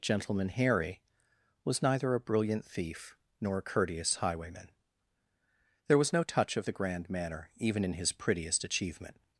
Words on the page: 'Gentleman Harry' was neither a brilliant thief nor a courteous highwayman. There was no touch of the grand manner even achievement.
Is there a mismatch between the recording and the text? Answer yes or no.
yes